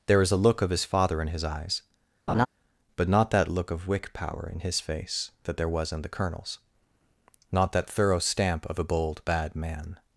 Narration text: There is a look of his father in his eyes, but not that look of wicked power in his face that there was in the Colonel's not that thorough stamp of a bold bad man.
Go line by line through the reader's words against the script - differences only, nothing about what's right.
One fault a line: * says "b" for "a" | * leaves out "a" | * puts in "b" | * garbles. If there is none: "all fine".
* says "wick" for "wicked"